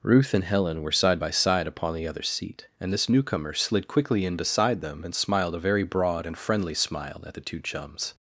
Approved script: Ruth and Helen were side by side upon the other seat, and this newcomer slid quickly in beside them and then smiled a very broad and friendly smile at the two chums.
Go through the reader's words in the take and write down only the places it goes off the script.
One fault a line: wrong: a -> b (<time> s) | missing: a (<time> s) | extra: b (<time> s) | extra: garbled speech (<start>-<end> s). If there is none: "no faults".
missing: then (5.1 s)